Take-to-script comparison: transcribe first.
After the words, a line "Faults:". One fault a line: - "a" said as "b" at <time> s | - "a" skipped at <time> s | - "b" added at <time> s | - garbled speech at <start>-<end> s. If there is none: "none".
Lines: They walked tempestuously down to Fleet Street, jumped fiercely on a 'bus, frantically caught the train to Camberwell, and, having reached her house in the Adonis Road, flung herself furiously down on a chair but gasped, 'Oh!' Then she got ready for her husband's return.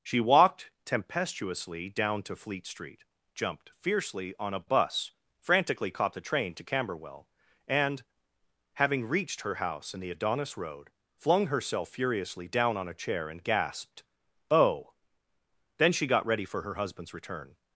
She walked tempestuously down to Fleet Street, jumped fiercely on a 'bus, frantically caught the train to Camberwell, and, having reached her house in the Adonis Road, flung herself furiously down on a chair and gasped, 'Oh!' Then she got ready for her husband's return.
Faults:
- "They" said as "She" at 0.0 s
- "but" said as "and" at 13.3 s